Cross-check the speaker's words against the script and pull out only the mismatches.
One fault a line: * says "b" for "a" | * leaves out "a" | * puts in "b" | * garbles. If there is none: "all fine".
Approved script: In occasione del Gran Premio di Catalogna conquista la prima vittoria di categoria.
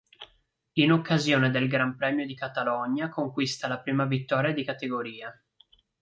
all fine